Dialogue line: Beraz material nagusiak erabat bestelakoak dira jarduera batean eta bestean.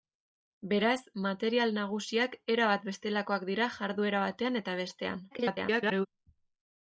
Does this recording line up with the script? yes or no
no